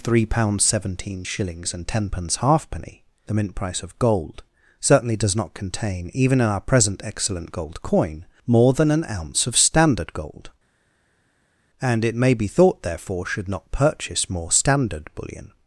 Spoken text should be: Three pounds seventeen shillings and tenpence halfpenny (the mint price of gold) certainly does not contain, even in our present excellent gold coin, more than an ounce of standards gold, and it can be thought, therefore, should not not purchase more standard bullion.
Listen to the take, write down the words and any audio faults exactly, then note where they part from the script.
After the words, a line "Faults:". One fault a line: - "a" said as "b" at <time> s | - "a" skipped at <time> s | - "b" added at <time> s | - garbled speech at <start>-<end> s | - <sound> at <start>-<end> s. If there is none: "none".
Three pounds seventeen shillings and tenpence halfpenny (the mint price of gold) certainly does not contain, even in our present excellent gold coin, more than an ounce of standard gold, and it may be thought, therefore, should not purchase more standard bullion.
Faults:
- "standards" said as "standard" at 9.6 s
- "can" said as "may" at 12.1 s
- "not" skipped at 13.7 s